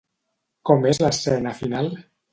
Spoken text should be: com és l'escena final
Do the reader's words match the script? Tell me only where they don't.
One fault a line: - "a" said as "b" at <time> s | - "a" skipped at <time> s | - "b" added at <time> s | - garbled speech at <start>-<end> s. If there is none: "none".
none